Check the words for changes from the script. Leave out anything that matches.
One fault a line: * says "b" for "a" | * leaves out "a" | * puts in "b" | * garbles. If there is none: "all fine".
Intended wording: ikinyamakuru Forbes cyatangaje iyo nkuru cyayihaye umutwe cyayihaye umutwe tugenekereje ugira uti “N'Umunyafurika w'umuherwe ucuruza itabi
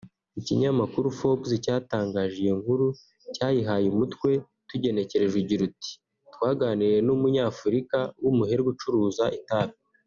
* leaves out "cyayihaye umutwe"
* puts in "Twaganiriye"